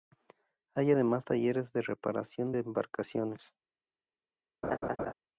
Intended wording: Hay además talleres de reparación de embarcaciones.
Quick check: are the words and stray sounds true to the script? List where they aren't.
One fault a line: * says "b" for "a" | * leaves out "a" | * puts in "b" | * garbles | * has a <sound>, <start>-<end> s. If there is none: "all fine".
* has a laugh, 4.6-5.1 s